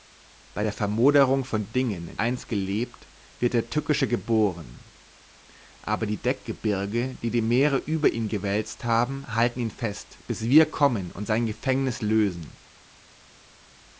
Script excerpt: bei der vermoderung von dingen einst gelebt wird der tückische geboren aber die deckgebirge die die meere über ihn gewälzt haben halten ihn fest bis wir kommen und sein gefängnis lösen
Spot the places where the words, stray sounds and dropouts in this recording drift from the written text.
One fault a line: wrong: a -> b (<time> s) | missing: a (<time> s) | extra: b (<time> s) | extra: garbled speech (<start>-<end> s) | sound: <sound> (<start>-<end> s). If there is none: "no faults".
no faults